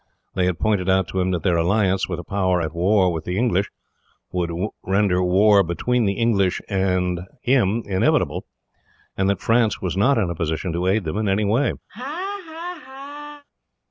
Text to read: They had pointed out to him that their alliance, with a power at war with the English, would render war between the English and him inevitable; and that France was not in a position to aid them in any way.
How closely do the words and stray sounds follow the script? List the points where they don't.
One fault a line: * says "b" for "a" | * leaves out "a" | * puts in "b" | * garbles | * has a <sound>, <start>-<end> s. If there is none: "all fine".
* has a laugh, 11.9-13.4 s